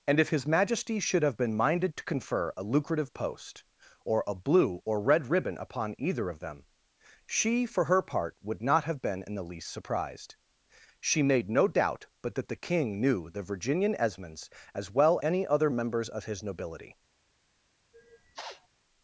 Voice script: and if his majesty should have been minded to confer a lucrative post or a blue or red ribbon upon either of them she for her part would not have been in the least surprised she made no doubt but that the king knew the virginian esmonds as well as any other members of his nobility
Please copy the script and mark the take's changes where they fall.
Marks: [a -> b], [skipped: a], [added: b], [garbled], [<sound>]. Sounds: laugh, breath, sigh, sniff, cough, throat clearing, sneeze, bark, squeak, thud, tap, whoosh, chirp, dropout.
and if his majesty should have been minded to confer a lucrative post or a blue or red ribbon upon either of them she for her part would not have been in the least surprised she made no doubt but that the king knew the virginian esmonds as well [skipped: as] any other members of his nobility [sniff]